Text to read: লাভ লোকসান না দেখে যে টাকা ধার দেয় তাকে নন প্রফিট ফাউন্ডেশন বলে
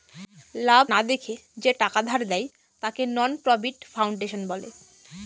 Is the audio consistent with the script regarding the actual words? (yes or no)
no